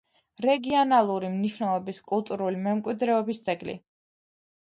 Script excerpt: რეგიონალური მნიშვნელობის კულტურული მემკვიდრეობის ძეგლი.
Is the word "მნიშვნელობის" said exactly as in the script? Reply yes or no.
yes